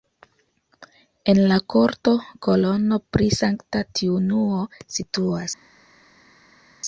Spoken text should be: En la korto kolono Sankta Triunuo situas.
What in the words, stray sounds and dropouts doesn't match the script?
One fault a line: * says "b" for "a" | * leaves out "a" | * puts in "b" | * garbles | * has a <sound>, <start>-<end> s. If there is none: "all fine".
* puts in "pri"